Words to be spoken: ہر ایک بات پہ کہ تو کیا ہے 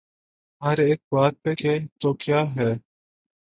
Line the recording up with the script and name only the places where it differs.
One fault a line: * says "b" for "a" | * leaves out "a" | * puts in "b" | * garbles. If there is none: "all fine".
all fine